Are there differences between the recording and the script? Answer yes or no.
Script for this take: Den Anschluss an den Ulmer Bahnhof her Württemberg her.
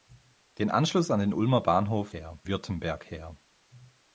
no